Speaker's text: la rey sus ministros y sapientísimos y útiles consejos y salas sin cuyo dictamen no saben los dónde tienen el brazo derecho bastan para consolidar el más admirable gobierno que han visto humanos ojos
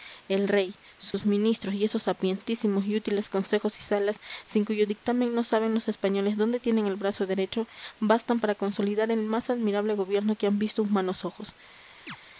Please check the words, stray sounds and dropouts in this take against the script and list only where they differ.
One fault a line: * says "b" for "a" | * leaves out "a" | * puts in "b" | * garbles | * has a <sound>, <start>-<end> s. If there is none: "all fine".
* says "el" for "la"
* has a dropout, 1.1-1.1 s
* puts in "esos"
* puts in "españoles"
* has a chirp, 12.1-12.2 s